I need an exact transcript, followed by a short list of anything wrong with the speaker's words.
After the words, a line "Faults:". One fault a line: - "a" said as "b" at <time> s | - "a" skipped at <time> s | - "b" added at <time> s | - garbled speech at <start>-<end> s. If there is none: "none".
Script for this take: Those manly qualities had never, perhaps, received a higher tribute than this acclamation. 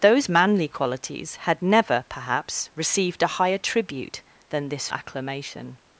Those manly qualities had never, perhaps, received a higher tribute than this acclamation.
Faults:
none